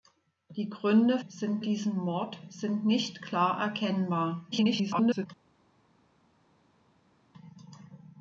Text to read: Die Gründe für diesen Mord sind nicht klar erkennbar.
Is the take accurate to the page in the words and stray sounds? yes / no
no